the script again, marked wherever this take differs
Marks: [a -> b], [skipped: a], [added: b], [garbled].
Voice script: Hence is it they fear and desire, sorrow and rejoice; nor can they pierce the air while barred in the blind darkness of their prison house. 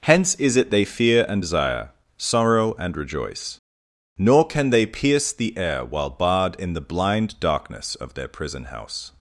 Hence is it they fear and desire, sorrow and rejoice; nor can they pierce the air while barred in the blind darkness of their prison house.